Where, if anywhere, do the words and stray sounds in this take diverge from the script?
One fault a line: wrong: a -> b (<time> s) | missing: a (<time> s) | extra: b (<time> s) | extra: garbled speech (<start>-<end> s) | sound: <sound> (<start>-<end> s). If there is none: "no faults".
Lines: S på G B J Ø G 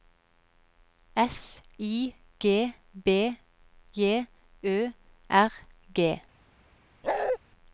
wrong: på -> I (1.8 s)
extra: R (5.3 s)
sound: bark (7.0-7.4 s)